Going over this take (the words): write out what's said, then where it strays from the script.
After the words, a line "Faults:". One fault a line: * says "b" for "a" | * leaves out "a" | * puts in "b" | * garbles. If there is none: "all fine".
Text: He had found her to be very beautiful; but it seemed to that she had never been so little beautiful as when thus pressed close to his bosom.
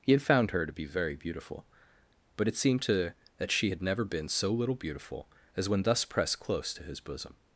He had found her to be very beautiful; but it seemed to that she had never been so little beautiful as when thus pressed close to his bosom.
Faults:
all fine